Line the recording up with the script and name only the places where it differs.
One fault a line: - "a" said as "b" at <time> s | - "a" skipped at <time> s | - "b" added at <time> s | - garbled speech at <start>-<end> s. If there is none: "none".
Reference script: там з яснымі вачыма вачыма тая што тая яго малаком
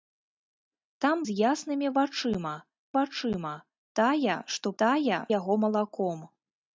none